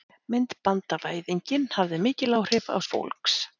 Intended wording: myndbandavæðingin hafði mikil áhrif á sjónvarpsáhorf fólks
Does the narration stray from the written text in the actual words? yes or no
yes